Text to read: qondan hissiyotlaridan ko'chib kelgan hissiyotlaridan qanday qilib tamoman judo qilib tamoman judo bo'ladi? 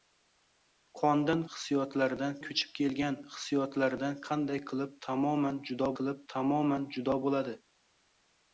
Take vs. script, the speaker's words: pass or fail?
pass